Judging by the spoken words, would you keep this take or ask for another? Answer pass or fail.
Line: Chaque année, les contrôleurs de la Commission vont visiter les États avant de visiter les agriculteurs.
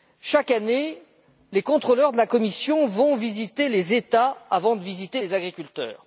pass